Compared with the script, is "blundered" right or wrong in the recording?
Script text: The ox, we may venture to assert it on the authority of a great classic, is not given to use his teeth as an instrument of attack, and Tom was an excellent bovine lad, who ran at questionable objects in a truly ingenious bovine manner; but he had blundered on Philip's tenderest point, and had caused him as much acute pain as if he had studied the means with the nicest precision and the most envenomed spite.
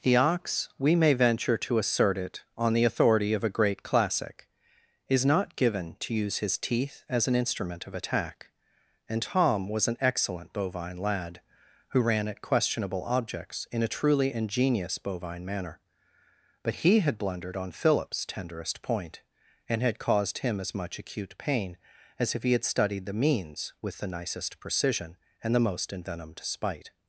right